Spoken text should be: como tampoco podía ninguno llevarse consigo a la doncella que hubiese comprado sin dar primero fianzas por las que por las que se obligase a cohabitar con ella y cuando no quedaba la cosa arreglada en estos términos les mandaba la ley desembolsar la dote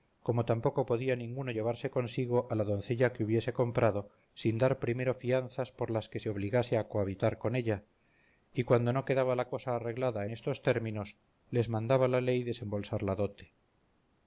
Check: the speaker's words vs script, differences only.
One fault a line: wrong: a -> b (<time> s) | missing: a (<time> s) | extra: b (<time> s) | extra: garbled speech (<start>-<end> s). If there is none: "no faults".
missing: por las que (6.2 s)